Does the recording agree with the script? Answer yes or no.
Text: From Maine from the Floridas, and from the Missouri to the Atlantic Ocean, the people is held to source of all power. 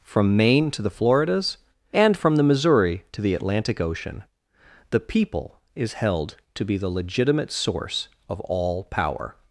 no